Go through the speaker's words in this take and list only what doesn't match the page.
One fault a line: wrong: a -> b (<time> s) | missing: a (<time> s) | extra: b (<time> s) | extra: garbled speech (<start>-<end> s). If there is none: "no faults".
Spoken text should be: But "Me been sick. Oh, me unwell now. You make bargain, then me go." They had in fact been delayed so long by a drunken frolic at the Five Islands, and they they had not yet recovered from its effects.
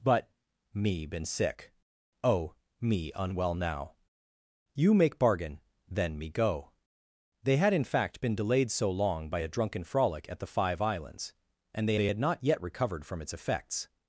no faults